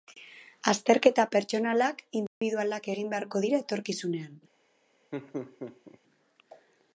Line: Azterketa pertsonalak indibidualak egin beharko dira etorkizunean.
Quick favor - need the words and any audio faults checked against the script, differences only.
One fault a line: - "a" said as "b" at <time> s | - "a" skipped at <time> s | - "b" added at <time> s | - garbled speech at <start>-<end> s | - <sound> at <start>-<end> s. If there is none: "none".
- dropout at 2.3-2.4 s
- laugh at 5.1-6.0 s